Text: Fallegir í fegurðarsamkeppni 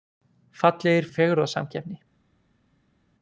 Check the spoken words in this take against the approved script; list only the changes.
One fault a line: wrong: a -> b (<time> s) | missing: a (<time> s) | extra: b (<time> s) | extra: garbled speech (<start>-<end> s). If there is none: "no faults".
no faults